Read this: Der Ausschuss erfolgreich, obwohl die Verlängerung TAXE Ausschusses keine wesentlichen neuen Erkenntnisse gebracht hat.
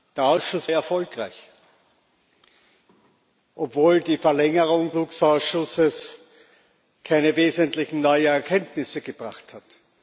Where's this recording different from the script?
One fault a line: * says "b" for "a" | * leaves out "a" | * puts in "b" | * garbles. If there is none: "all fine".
all fine